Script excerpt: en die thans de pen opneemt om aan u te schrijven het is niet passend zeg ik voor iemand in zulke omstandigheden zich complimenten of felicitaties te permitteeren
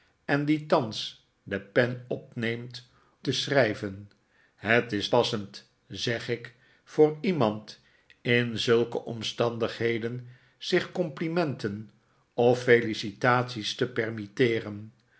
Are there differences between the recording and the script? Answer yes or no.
yes